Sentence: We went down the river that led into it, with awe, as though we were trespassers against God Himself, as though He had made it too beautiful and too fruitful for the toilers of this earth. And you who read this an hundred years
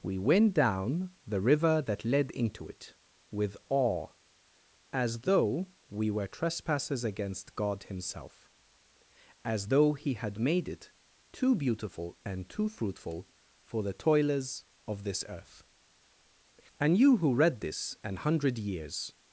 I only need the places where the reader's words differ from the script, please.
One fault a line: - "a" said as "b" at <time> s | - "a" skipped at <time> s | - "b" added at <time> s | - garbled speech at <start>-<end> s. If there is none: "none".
none